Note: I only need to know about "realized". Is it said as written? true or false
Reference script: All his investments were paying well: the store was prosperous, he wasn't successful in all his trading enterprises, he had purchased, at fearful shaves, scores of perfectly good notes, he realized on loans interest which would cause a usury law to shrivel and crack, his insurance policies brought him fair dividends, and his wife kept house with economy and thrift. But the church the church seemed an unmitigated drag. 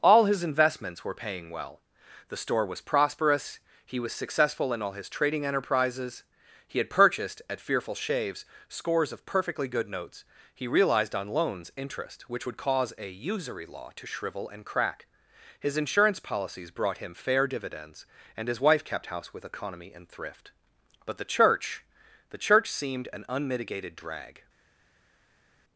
true